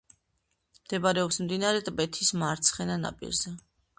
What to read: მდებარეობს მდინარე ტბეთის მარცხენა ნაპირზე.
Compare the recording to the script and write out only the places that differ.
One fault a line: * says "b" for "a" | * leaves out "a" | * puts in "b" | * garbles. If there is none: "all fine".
all fine